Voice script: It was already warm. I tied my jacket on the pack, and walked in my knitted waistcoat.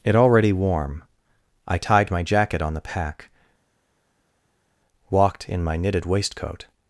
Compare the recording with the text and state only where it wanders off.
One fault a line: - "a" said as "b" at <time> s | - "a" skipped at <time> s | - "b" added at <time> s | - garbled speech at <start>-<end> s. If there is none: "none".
- "was" skipped at 0.1 s
- "and" skipped at 3.3 s